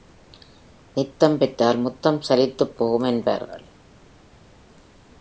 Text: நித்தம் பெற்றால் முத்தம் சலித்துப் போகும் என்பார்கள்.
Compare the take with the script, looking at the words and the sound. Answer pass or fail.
pass